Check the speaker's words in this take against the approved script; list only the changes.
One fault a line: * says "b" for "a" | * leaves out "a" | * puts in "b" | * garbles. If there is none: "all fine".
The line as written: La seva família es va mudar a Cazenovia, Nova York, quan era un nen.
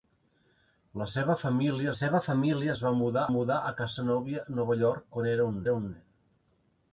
* puts in "seva família"
* puts in "mudar"
* puts in "era un"